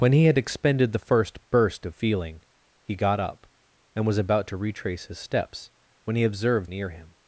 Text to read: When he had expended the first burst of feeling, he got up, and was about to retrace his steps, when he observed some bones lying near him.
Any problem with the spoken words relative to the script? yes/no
yes